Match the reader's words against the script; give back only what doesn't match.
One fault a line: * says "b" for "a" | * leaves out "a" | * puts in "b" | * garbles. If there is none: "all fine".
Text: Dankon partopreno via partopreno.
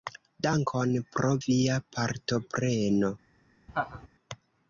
* says "pro" for "partopreno"